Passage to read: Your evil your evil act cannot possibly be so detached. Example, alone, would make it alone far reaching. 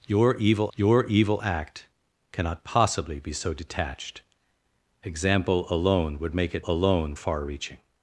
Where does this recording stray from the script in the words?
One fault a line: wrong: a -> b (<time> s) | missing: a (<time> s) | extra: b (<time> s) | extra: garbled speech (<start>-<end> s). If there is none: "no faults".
no faults